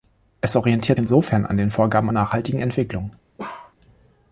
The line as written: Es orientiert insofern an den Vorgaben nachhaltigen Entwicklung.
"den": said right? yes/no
yes